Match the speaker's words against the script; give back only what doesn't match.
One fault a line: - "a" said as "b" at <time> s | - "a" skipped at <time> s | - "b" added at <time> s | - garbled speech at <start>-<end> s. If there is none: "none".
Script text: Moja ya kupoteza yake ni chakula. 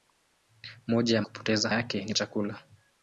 none